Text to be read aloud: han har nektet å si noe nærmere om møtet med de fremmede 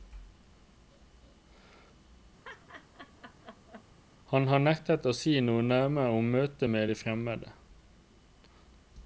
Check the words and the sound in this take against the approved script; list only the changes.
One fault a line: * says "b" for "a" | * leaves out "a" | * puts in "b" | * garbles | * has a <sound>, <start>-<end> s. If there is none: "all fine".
* has a laugh, 2.4-3.8 s